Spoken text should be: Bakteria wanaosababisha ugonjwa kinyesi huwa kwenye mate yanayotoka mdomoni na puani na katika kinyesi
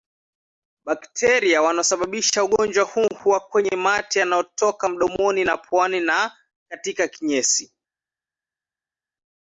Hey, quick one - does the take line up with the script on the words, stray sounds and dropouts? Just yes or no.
no